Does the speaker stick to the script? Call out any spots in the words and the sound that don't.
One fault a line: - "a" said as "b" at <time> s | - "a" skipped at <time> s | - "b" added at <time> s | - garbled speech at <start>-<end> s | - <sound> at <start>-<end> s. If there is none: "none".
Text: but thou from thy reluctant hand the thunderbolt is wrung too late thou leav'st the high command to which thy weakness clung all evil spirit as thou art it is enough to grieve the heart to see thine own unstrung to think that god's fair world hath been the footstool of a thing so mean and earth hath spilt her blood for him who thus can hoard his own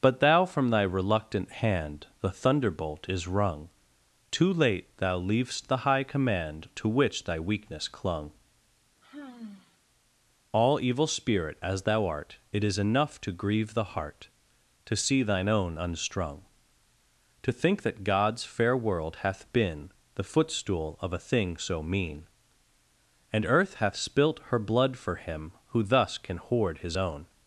- sigh at 9.0-9.8 s